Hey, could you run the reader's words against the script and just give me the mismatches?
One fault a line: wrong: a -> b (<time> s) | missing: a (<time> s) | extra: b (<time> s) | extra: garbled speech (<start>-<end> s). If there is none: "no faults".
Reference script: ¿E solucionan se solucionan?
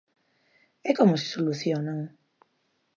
wrong: solucionan -> como (1.0 s)